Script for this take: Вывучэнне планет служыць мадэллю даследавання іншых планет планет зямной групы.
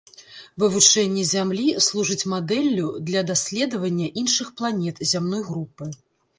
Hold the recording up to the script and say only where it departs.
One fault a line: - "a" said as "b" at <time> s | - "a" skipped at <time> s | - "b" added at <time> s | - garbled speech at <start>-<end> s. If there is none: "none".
- "планет" said as "зямлі" at 1.3 s
- "для" added at 3.1 s
- "планет" skipped at 5.1 s